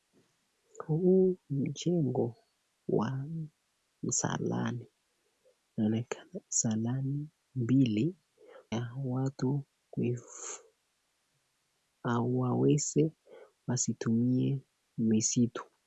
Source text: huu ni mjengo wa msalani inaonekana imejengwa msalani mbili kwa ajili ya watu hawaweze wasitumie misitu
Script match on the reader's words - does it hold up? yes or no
no